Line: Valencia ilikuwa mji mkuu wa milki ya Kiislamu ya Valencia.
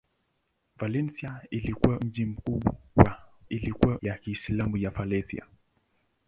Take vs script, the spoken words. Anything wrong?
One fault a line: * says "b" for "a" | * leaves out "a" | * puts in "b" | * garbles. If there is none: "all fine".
* says "ilikuwa" for "milki"